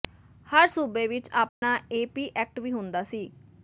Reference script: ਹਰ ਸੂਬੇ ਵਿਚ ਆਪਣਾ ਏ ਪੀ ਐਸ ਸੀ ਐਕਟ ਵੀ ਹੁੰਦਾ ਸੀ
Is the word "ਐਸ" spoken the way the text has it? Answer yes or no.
no